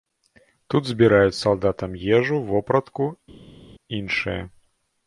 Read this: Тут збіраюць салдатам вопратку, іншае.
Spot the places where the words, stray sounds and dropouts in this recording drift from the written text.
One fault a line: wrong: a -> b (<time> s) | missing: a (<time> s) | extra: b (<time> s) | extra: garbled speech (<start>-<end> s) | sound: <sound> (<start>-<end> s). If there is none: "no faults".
extra: ежу (2.2 s)